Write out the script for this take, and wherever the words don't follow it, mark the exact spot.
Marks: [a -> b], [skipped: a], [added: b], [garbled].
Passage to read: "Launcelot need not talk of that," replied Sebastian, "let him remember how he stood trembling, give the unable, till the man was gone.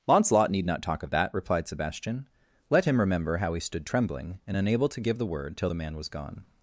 "Launcelot need not talk of that," replied Sebastian, "let him remember how he stood trembling, [added: and unable to] give the [unable, -> word] till the man was gone.